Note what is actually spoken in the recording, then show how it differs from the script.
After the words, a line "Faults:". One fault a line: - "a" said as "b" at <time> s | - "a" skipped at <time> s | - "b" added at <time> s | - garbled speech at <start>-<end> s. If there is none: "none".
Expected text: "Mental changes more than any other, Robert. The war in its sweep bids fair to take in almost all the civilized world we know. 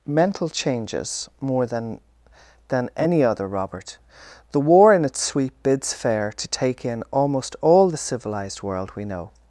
"Mental changes more than than any other, Robert. The war in its sweep bids fair to take in almost all the civilized world we know.
Faults:
- "than" added at 2.7 s